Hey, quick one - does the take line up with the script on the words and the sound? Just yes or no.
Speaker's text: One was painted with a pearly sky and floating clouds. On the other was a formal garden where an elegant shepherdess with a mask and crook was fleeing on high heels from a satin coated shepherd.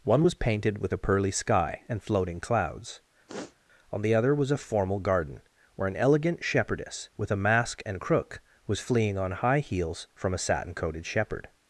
no